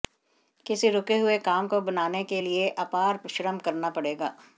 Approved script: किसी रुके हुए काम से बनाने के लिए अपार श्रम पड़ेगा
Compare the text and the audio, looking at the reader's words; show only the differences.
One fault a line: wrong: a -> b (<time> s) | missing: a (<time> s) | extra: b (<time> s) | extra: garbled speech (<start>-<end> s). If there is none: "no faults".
wrong: से -> को (1.6 s)
extra: करना (3.6 s)